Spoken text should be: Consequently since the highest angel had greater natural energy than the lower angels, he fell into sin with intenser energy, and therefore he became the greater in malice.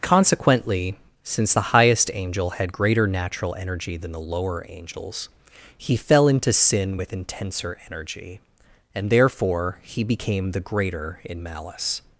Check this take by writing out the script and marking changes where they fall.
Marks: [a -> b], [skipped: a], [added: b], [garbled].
Consequently since the highest angel had greater natural energy than the lower angels, he fell into sin with intenser energy, and therefore he became the greater in malice.